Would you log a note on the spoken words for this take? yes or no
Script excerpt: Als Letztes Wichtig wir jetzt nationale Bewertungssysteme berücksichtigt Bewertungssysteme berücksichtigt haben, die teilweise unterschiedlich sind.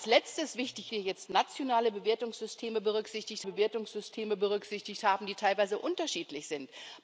no